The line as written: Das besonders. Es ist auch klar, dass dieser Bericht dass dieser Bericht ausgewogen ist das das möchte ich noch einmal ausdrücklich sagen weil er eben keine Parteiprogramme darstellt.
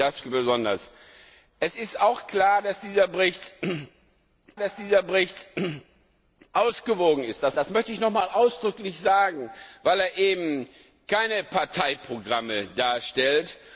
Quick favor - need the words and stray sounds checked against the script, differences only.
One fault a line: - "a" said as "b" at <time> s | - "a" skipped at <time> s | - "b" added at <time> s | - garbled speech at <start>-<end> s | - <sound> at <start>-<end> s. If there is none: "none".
none